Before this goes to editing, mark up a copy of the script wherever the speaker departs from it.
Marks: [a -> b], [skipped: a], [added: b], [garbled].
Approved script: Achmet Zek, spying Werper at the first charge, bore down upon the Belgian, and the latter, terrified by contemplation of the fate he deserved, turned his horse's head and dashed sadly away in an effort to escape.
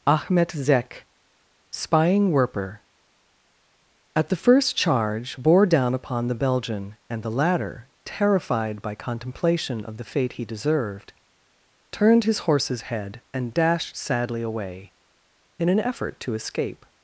Achmet Zek, spying Werper at the first charge, bore down upon the Belgian, and the latter, terrified by contemplation of the fate he deserved, turned his horse's head and dashed sadly away in an effort to escape.